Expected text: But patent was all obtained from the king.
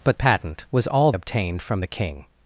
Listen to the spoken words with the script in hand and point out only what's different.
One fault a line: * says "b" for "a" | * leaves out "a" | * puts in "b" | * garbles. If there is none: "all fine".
all fine